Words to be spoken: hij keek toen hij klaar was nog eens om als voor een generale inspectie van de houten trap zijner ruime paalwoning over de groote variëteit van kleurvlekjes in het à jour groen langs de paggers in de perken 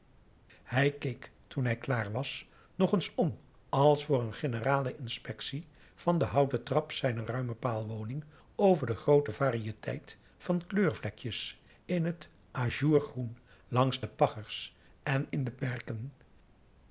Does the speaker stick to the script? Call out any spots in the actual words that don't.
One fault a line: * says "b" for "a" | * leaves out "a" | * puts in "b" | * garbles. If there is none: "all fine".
* puts in "en"